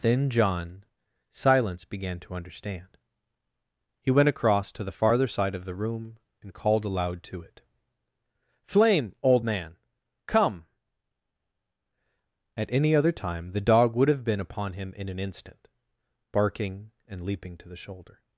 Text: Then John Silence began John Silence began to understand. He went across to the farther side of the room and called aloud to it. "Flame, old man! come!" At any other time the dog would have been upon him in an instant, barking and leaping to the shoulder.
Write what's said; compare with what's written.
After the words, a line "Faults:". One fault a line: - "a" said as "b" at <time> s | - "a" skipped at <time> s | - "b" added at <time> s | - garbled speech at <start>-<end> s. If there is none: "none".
Then John Silence began to understand. He went across to the farther side of the room and called aloud to it. "Flame, old man! come!" At any other time the dog would have been upon him in an instant, barking and leaping to the shoulder.
Faults:
- "John Silence began" skipped at 2.2 s